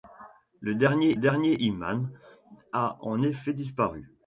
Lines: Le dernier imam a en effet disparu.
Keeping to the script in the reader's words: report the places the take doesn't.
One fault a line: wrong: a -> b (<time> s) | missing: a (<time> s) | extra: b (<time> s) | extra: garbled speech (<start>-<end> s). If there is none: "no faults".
extra: dernier (1.2 s)